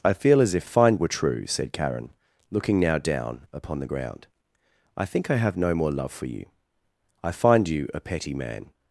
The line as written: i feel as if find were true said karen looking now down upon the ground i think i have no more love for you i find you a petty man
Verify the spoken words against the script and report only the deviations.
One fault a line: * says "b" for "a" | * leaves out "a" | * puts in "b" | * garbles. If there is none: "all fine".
all fine